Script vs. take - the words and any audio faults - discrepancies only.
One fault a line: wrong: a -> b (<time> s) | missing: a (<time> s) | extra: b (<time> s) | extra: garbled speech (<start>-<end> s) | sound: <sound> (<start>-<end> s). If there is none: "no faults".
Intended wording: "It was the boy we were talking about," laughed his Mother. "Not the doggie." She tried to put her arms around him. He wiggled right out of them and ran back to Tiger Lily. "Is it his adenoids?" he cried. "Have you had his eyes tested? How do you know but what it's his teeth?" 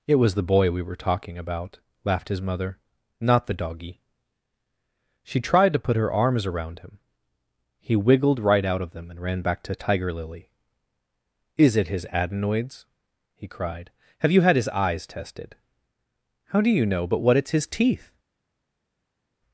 no faults